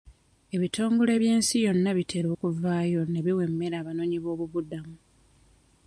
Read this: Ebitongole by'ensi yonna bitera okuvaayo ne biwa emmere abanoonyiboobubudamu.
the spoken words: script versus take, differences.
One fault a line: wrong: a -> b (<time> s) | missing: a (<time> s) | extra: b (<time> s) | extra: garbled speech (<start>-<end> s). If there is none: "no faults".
no faults